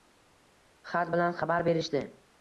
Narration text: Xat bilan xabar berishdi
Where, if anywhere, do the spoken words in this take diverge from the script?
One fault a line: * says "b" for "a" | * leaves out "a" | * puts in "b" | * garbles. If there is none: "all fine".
all fine